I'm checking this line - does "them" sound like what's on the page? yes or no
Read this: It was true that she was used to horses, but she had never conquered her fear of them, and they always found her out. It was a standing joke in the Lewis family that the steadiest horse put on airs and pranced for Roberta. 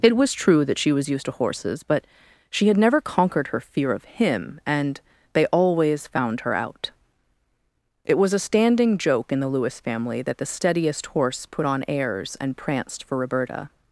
no